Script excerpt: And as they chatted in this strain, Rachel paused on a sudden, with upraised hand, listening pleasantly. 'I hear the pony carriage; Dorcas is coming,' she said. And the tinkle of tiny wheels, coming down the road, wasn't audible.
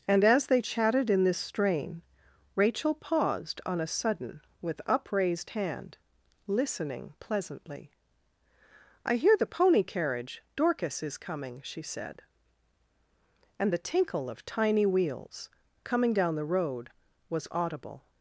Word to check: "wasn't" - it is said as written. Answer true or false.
false